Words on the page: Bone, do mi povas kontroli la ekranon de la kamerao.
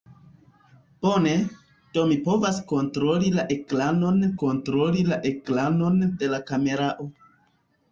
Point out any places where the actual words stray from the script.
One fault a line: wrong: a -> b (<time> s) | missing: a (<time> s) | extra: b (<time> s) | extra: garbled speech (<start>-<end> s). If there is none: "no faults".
extra: kontroli la ekranon (4.4 s)